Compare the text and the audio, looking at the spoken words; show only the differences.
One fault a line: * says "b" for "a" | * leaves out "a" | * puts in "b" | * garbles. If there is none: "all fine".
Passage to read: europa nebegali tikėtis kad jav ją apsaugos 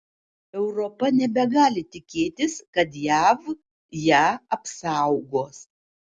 all fine